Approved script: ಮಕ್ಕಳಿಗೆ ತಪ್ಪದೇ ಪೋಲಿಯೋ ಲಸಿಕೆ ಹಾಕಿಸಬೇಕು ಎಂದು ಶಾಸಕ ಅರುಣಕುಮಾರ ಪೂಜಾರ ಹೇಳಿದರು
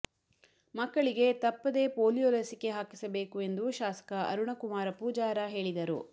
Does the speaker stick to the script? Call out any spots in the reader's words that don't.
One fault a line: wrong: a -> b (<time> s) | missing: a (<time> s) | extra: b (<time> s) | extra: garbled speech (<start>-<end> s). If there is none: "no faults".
no faults